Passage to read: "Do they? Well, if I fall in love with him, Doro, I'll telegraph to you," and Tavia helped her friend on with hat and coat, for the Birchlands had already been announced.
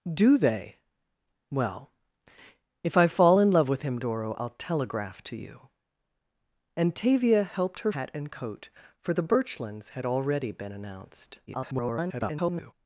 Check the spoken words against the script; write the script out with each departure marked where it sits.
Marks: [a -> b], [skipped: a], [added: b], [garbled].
"Do they? Well, if I fall in love with him, Doro, I'll telegraph to you," and Tavia helped her [skipped: friend on with] hat and coat, for the Birchlands had already been announced. [garbled]